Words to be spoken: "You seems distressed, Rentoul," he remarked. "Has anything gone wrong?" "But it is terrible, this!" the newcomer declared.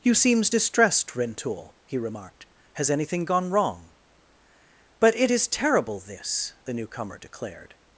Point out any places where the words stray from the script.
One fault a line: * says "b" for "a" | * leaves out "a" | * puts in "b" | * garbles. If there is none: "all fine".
all fine